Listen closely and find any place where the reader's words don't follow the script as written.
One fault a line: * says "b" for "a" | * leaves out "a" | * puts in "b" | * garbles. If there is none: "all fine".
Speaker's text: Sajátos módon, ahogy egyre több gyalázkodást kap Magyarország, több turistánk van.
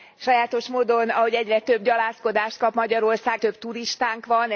all fine